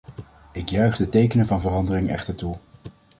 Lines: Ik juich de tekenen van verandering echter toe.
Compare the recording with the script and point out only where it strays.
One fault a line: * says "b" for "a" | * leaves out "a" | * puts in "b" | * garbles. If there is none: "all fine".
all fine